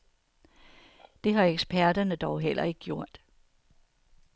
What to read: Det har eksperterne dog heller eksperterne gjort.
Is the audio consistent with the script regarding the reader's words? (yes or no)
no